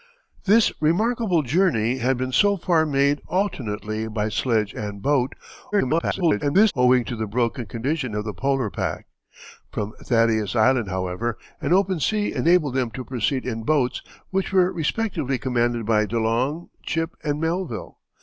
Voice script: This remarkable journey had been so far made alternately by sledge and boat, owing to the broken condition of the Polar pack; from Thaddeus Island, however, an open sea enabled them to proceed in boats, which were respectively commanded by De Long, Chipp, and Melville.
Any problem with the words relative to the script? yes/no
yes